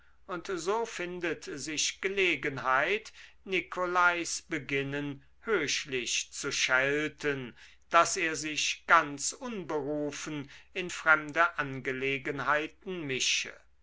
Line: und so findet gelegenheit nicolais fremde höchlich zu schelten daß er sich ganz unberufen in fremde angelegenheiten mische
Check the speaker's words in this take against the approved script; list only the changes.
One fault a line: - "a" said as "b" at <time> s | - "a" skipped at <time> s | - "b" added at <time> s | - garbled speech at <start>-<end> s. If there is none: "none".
- "sich" added at 1.4 s
- "fremde" said as "beginnen" at 4.4 s